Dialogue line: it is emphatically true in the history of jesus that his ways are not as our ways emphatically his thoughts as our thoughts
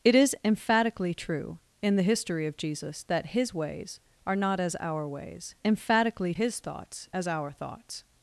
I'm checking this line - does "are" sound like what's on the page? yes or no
yes